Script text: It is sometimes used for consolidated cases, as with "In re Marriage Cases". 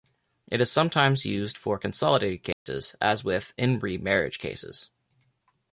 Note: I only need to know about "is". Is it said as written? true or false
true